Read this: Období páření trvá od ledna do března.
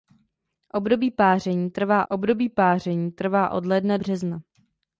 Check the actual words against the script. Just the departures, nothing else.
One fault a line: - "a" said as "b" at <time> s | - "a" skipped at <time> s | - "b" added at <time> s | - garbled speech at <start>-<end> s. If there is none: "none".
- "období páření trvá" added at 2.1 s
- "do" skipped at 4.0 s